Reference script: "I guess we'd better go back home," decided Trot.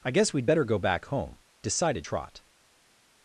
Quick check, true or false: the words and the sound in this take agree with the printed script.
true